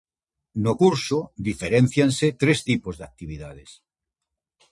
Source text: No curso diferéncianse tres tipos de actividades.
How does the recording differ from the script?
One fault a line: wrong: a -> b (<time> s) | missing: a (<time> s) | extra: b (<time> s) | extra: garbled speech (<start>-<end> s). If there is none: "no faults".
no faults